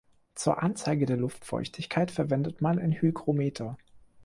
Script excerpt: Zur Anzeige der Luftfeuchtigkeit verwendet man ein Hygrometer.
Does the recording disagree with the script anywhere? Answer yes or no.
no